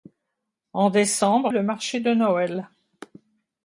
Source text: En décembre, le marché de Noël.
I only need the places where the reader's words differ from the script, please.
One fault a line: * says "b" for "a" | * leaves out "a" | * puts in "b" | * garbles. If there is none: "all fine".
all fine